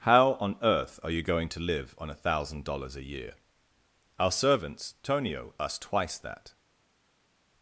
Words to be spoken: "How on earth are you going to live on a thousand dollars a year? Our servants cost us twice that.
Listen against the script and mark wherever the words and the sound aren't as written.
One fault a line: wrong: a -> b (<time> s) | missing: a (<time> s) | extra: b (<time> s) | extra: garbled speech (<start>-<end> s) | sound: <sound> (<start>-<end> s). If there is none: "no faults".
wrong: cost -> tonio (5.0 s)